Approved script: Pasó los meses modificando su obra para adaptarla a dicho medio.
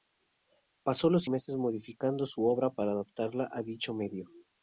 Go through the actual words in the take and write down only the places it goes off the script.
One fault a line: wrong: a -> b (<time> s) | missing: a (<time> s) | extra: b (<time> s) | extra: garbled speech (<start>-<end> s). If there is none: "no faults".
no faults